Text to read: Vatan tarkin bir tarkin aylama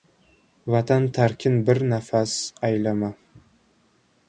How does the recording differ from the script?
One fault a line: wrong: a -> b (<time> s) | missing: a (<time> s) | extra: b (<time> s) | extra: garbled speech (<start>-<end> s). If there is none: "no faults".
wrong: tarkin -> nafas (1.9 s)